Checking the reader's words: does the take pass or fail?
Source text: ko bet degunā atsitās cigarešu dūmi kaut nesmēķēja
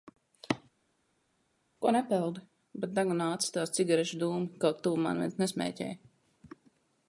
fail